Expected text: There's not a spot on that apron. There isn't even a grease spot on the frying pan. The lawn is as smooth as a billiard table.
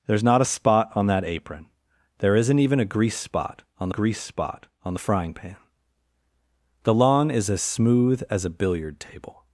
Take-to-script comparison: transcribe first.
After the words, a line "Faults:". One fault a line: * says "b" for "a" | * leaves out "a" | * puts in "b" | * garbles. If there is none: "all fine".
There's not a spot on that apron. There isn't even a grease spot on grease spot on the frying pan. The lawn is as smooth as a billiard table.
Faults:
* puts in "grease spot on"